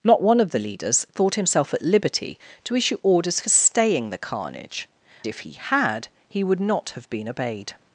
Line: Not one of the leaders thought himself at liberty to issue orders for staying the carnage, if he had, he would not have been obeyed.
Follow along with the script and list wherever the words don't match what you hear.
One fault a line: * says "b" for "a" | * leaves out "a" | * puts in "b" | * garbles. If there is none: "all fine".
all fine